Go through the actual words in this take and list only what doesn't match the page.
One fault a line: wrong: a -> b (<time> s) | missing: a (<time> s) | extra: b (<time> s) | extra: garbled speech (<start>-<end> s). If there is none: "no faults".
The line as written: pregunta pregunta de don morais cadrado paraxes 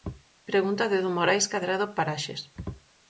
missing: pregunta (0.8 s)